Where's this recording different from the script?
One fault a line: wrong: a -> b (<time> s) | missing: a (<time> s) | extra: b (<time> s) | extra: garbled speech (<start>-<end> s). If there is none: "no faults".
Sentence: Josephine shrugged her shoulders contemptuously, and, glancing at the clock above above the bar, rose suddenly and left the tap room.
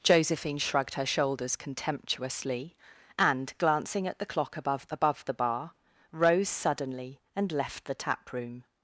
no faults